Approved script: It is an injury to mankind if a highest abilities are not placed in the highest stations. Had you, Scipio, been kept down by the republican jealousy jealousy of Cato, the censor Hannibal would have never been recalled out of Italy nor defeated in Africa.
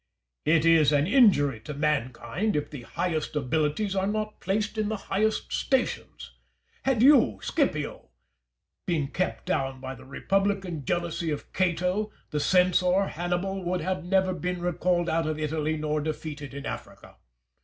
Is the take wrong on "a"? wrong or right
wrong